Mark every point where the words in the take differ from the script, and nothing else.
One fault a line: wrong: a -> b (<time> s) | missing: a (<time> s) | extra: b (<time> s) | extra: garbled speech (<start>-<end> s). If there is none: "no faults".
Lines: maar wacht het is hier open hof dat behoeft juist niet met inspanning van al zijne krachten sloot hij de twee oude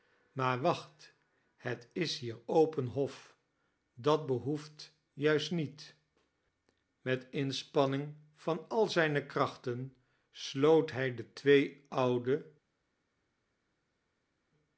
no faults